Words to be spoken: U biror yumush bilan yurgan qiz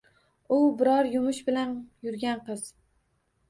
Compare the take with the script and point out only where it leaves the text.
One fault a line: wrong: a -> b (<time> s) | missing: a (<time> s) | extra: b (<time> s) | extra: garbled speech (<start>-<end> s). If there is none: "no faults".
no faults